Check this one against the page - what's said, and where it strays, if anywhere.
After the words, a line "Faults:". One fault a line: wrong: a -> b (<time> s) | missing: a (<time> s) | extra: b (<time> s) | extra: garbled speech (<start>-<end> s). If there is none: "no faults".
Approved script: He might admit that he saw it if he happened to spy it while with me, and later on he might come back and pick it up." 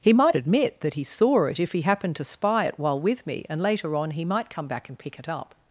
He might admit that he saw it if he happened to spy it while with me, and later on he might come back and pick it up."
Faults:
no faults